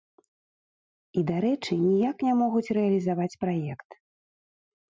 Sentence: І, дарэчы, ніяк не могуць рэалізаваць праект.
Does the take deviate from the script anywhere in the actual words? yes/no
no